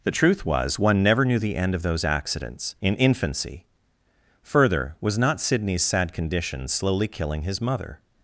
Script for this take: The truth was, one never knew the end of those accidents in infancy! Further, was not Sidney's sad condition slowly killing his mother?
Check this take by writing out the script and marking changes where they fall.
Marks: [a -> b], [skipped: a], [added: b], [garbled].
The truth was, one never knew the end of those accidents in infancy! Further, was not Sidney's sad condition slowly killing his mother?